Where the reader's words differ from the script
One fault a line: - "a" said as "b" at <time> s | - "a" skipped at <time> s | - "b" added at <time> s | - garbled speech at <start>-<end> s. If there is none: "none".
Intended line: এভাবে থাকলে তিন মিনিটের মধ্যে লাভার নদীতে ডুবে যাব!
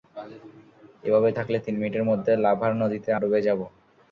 none